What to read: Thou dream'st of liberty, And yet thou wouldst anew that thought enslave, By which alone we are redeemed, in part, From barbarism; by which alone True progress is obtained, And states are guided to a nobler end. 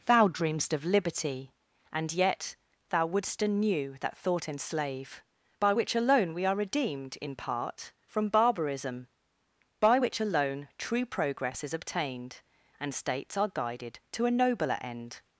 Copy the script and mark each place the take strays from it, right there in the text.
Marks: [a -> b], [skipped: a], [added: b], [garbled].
Thou dream'st of liberty, And yet thou wouldst anew that thought enslave, By which alone we are redeemed, in part, From barbarism; by which alone True progress is obtained, And states are guided to a nobler end.